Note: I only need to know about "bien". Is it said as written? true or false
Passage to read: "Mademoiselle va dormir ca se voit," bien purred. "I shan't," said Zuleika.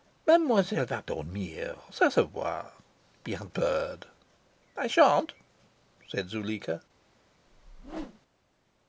true